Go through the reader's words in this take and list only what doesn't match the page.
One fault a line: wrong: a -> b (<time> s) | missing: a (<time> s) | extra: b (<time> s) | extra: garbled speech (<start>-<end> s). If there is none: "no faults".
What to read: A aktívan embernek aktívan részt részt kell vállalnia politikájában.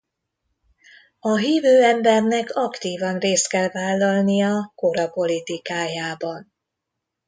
wrong: aktívan -> hívő (1.4 s)
missing: részt (3.5 s)
extra: kora (4.7 s)